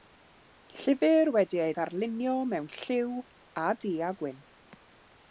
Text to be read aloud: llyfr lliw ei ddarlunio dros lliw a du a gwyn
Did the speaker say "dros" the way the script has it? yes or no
no